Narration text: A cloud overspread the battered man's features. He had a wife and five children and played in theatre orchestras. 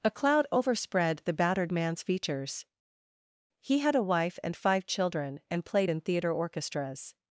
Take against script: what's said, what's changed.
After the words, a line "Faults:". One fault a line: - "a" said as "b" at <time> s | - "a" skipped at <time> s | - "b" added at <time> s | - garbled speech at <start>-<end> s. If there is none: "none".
A cloud overspread the battered man's features. He had a wife and five children and played in theatre orchestras.
Faults:
none